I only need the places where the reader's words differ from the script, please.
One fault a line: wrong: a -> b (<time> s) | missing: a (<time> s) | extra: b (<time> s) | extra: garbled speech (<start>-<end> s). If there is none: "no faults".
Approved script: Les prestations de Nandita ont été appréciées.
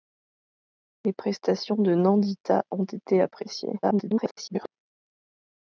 extra: garbled speech (3.8-4.7 s)